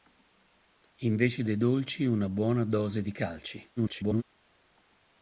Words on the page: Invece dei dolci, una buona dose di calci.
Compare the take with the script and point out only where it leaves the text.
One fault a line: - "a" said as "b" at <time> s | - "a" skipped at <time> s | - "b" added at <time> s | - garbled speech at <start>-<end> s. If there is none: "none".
- garbled speech at 3.8-4.2 s